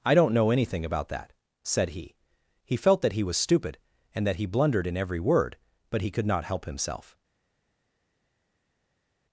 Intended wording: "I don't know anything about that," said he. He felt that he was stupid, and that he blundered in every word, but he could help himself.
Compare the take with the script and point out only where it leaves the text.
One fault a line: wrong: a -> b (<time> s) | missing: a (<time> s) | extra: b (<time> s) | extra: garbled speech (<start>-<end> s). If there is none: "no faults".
extra: not (6.2 s)